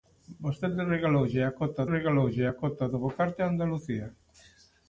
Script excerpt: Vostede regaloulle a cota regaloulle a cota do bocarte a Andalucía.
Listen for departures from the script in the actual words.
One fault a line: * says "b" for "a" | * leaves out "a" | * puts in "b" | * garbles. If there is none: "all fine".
all fine